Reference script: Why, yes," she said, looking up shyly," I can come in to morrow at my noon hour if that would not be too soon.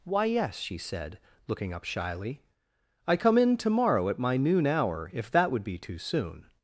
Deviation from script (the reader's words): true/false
true